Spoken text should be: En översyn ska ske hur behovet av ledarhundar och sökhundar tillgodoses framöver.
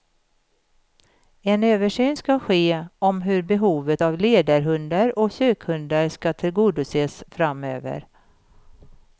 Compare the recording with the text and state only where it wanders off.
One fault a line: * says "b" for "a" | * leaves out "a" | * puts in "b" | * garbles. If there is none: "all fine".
* puts in "om"
* puts in "ska"